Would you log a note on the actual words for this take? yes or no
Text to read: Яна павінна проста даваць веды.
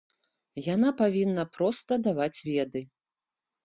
no